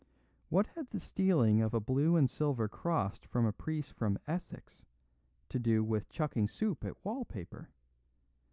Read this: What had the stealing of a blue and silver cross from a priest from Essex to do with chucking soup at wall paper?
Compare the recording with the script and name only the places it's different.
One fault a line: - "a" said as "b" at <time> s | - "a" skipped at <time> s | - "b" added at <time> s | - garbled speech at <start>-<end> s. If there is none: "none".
none